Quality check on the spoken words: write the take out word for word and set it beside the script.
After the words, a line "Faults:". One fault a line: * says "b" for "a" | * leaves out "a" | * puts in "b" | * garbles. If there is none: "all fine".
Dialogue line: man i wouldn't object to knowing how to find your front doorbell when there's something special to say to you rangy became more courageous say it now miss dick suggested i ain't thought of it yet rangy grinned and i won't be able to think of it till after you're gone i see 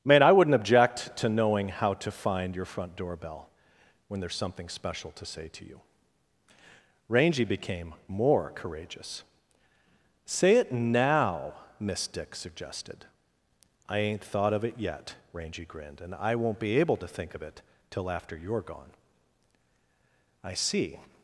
man i wouldn't object to knowing how to find your front doorbell when there's something special to say to you rangy became more courageous say it now miss dick suggested i ain't thought of it yet rangy grinned and i won't be able to think of it till after you're gone i see
Faults:
all fine